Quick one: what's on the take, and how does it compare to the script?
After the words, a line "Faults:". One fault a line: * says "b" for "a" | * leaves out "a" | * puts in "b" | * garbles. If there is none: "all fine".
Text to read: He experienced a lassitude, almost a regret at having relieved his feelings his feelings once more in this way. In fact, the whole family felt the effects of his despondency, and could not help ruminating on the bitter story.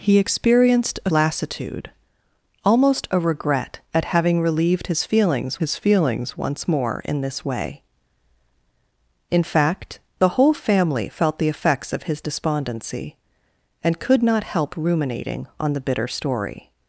He experienced a lassitude, almost a regret at having relieved his feelings his feelings once more in this way. In fact, the whole family felt the effects of his despondency, and could not help ruminating on the bitter story.
Faults:
all fine